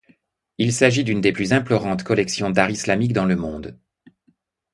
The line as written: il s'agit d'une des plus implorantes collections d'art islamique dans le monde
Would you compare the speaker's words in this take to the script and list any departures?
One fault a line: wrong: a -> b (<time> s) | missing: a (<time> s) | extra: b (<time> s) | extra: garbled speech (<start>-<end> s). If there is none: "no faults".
no faults